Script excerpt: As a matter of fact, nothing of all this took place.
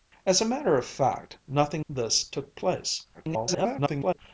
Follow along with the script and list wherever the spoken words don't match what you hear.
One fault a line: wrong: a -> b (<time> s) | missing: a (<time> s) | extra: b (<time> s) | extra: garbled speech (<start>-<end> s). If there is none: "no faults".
missing: of all (1.9 s)
extra: garbled speech (3.1-4.2 s)